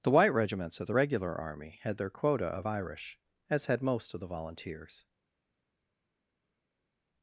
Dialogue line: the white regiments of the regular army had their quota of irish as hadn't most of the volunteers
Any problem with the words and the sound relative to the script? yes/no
yes